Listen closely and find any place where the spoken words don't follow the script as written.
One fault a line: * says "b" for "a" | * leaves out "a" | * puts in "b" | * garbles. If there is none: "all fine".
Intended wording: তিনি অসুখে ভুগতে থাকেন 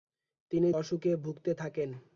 all fine